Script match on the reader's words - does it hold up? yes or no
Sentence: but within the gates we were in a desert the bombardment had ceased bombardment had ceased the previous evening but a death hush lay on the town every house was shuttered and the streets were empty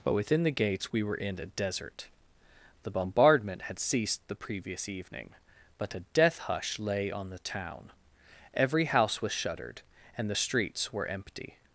no